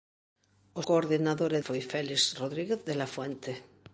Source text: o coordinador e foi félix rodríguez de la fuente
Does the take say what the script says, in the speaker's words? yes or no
yes